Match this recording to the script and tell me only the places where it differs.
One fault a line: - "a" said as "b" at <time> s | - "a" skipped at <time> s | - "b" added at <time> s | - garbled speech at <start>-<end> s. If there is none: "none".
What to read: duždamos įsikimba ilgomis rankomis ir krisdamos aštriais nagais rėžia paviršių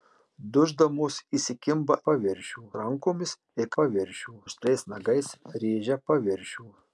- "ilgomis" said as "paviršių" at 2.1 s
- "krisdamos" said as "paviršių" at 3.8 s